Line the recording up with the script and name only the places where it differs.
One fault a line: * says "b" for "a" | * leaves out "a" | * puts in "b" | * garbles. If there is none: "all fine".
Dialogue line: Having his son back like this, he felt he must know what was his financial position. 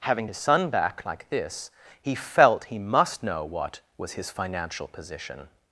all fine